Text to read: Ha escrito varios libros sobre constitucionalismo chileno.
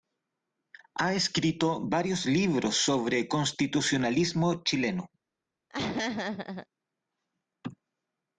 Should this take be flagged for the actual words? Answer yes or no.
no